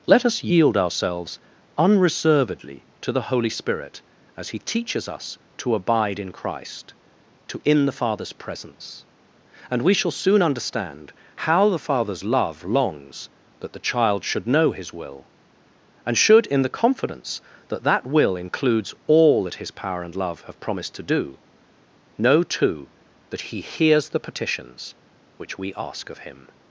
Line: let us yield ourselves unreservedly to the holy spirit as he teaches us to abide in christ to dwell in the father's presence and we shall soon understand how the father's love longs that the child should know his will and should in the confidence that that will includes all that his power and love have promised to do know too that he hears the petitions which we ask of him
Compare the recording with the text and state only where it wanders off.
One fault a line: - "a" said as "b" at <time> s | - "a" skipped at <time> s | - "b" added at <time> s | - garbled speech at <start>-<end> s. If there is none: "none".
- "dwell" skipped at 7.6 s